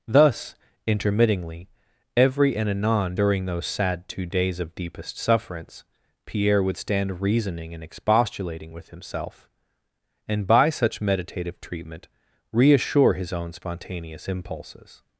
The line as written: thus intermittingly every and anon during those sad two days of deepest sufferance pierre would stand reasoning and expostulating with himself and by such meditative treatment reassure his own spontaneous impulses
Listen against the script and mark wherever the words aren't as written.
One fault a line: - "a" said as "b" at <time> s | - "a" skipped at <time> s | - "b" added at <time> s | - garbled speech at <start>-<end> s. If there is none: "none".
none